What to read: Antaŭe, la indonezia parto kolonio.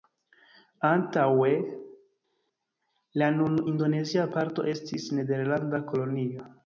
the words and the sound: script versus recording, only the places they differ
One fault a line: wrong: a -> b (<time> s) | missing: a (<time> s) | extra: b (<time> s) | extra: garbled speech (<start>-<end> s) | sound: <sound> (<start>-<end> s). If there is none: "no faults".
extra: nun (3.4 s)
extra: estis nederlanda (4.8 s)